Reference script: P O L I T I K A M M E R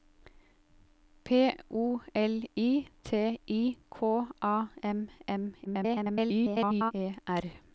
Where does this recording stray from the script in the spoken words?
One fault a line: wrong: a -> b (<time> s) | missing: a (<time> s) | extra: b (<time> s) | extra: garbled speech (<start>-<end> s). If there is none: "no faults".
extra: garbled speech (5.6-6.9 s)